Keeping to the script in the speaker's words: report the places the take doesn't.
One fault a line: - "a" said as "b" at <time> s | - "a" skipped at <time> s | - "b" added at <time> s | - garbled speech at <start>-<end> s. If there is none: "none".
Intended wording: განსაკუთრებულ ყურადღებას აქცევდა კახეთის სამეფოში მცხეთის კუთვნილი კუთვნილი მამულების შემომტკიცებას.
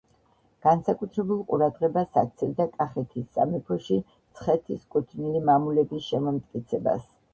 - "კუთვნილი" skipped at 5.4 s